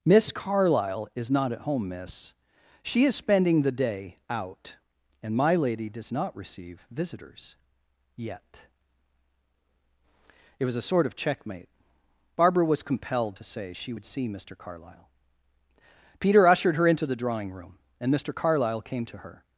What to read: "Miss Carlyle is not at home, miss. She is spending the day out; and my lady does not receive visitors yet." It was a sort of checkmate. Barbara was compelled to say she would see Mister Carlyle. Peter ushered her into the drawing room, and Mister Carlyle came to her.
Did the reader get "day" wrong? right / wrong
right